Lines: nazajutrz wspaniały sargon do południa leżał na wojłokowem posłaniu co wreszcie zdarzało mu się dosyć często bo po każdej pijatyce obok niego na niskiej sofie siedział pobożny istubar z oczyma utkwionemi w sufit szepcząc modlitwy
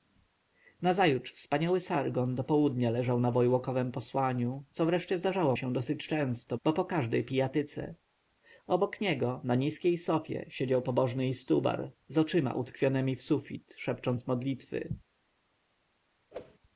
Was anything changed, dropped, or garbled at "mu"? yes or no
yes